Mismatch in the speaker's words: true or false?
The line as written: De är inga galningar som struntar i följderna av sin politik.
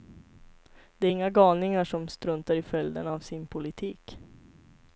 false